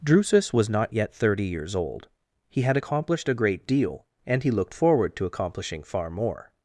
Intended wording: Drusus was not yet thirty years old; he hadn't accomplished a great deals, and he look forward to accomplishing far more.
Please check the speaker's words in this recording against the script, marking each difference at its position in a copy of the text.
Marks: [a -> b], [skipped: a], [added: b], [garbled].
Drusus was not yet thirty years old; he [hadn't -> had] accomplished a great [deals, -> deal] and he [look -> looked] forward to accomplishing far more.